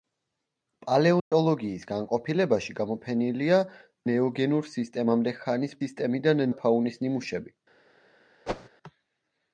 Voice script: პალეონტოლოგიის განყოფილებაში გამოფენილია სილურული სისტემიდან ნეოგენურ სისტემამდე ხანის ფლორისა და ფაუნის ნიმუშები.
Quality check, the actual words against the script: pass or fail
fail